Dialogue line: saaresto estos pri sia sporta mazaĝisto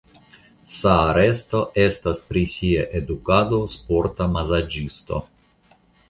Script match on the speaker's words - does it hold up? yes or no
no